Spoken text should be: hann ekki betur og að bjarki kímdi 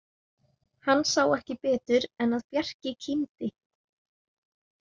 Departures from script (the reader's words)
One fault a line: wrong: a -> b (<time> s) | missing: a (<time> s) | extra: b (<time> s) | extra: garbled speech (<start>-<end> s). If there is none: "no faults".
extra: sá (1.1 s)
wrong: og -> en (2.3 s)